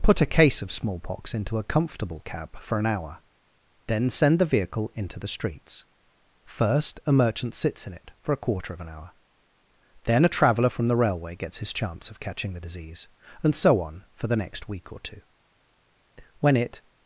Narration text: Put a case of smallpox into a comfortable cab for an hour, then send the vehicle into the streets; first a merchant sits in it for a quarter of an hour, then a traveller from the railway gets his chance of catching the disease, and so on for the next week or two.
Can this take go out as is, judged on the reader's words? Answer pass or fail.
fail